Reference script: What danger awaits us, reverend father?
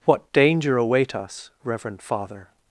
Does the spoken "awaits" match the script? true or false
false